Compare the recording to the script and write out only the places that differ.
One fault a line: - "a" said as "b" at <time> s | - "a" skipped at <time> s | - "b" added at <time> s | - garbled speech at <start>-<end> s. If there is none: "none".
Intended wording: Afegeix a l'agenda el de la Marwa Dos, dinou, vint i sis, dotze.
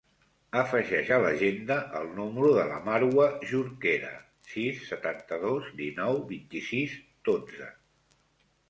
- "número" added at 2.2 s
- "Jorquera sis setanta" added at 3.5 s